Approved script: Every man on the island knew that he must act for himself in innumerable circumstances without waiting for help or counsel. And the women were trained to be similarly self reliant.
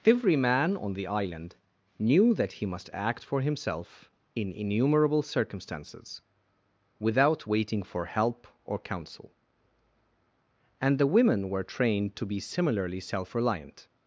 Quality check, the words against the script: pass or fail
pass